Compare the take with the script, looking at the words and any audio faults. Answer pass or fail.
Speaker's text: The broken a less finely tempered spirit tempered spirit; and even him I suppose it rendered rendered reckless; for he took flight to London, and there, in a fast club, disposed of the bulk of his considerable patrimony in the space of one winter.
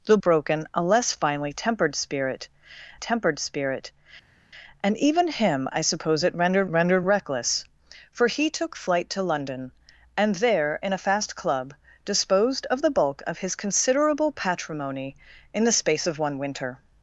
pass